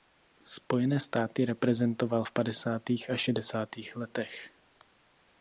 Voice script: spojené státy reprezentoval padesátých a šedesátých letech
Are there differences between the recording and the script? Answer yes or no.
yes